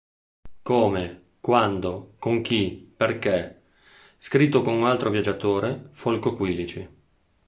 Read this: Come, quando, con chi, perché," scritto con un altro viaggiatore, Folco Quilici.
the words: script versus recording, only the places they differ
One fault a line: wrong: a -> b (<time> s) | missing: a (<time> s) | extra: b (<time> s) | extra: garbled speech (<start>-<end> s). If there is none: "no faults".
no faults